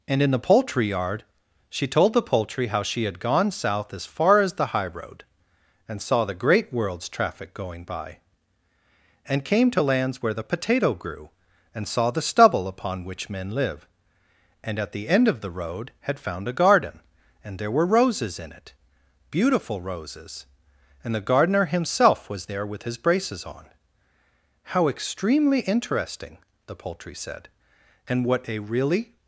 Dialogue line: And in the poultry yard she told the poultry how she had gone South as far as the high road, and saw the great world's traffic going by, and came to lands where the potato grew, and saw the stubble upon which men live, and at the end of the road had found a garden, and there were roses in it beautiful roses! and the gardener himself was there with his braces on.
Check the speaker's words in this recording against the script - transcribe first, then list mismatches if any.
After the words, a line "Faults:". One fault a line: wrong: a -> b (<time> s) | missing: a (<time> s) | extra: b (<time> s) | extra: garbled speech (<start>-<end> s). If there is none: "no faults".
And in the poultry yard she told the poultry how she had gone South as far as the high road, and saw the great world's traffic going by, and came to lands where the potato grew, and saw the stubble upon which men live, and at the end of the road had found a garden, and there were roses in it beautiful roses! and the gardener himself was there with his braces on. "How extremely interesting," the poultry said, "and what a really
Faults:
extra: How extremely interesting the poultry said and what a really (24.7 s)